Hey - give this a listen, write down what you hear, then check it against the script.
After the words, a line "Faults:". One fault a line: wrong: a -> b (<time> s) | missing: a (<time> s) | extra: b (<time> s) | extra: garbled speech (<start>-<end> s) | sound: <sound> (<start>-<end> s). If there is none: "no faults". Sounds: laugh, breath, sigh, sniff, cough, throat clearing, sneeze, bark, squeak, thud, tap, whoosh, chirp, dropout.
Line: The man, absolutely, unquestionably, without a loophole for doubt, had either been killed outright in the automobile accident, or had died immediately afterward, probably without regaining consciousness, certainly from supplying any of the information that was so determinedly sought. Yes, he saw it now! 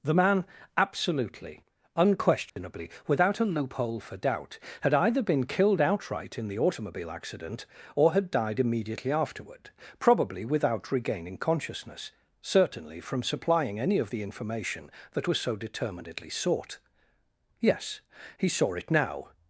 The man, absolutely, unquestionably, without a loophole for doubt, had either been killed outright in the automobile accident, or had died immediately afterward, probably without regaining consciousness, certainly from supplying any of the information that was so determinedly sought. Yes, he saw it now!
Faults:
sound: dropout (2.5-2.6 s)